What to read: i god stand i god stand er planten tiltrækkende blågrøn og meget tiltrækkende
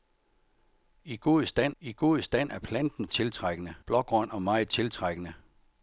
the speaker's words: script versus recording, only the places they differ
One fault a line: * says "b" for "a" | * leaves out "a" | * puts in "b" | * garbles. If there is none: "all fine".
all fine